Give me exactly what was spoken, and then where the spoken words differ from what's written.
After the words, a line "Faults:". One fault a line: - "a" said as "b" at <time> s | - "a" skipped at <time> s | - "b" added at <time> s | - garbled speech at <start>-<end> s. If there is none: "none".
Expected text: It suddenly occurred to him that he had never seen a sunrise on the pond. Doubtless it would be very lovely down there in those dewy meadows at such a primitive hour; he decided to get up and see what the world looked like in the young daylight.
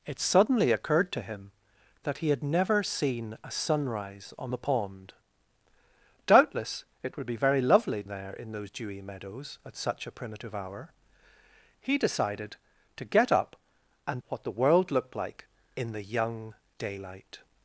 It suddenly occurred to him that he had never seen a sunrise on the pond. Doubtless it would be very lovely there in those dewy meadows at such a primitive hour; he decided to get up and what the world looked like in the young daylight.
Faults:
- "down" skipped at 8.0 s
- "see" skipped at 14.2 s